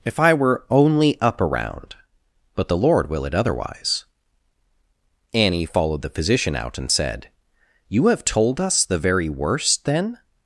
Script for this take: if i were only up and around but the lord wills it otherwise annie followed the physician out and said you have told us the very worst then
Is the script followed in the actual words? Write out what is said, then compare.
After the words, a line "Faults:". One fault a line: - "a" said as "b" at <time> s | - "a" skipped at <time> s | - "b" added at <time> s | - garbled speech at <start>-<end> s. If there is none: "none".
if i were only up around but the lord will it otherwise annie followed the physician out and said you have told us the very worst then
Faults:
- "and" skipped at 1.4 s
- "wills" said as "will" at 3.1 s